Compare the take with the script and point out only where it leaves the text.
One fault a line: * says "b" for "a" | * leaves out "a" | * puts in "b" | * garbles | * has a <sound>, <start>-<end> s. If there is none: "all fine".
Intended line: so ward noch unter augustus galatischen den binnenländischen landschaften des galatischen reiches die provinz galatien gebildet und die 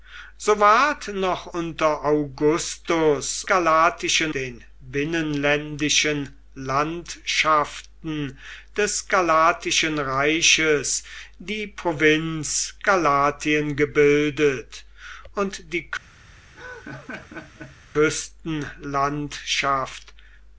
* has a laugh, 16.5-17.8 s